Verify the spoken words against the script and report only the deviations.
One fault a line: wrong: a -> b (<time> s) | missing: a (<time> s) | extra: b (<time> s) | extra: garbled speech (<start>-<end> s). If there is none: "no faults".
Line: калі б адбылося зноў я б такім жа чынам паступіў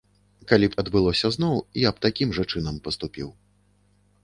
no faults